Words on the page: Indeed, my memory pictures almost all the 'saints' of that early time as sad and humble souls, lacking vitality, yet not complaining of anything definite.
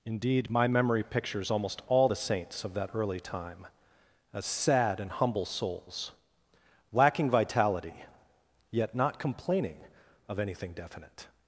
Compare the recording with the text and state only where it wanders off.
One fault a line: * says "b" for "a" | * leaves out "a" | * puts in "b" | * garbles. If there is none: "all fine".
all fine